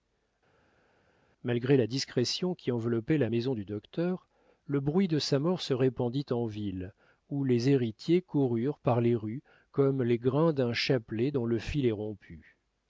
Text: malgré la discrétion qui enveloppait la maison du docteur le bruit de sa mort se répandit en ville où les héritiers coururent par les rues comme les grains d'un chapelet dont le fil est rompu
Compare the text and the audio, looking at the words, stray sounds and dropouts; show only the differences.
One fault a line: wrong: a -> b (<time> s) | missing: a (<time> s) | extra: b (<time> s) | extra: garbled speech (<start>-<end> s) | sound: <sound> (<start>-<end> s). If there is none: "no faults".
no faults